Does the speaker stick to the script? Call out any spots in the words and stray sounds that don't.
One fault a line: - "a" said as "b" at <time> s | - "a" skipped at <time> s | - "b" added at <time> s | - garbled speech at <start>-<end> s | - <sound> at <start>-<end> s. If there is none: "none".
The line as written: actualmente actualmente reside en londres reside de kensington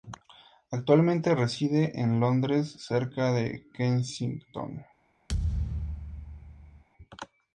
- "actualmente" skipped at 1.4 s
- "reside" said as "cerca" at 2.8 s
- thud at 5.3-6.8 s